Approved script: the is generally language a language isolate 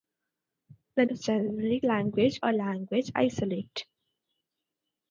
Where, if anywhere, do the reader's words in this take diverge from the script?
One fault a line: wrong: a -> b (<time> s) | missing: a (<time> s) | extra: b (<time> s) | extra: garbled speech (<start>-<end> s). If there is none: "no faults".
no faults